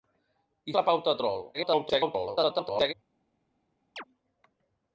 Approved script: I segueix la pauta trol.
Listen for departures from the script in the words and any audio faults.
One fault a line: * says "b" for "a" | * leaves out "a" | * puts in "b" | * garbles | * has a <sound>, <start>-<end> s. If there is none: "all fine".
* leaves out "segueix"
* garbles
* has a chirp, 4.0-4.0 s